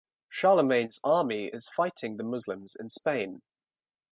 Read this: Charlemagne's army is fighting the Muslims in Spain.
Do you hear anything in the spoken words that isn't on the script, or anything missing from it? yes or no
no